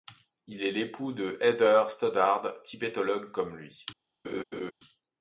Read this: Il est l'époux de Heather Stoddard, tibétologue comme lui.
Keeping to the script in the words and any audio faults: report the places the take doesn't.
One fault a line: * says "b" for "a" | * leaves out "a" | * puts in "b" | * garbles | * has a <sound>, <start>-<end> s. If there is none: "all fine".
* has a laugh, 4.2-4.7 s